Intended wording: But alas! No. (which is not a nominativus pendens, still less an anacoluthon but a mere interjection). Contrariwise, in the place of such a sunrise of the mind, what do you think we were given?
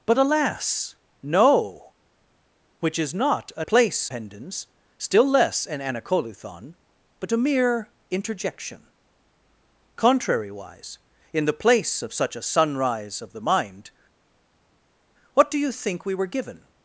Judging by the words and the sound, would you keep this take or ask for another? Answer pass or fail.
fail